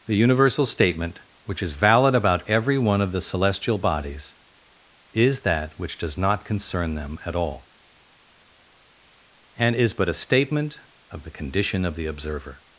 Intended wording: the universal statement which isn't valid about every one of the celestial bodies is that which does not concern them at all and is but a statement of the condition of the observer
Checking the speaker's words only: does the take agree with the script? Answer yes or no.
no